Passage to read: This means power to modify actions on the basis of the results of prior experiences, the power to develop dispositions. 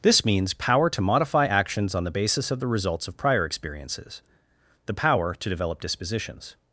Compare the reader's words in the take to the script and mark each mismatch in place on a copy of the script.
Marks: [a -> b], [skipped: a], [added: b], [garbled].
This means power to modify actions on the basis of the results of prior experiences, the power to develop dispositions.